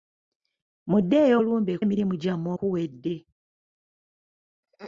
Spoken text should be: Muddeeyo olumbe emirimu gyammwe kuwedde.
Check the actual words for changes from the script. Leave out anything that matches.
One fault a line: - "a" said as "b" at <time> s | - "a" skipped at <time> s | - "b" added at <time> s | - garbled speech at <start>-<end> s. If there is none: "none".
none